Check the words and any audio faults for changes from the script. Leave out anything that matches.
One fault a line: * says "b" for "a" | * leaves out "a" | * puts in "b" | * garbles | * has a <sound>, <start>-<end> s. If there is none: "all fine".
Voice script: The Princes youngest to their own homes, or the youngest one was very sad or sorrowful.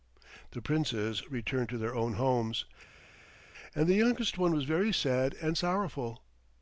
* says "returned" for "youngest"
* says "and" for "or"
* says "and" for "or"